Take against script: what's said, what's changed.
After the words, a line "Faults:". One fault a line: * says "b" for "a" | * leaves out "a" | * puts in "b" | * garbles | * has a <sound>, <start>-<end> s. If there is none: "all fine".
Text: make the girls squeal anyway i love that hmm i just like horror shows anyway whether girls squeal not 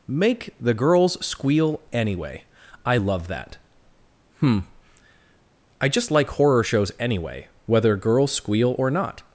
make the girls squeal anyway i love that hmm i just like horror shows anyway whether girls squeal or not
Faults:
* puts in "or"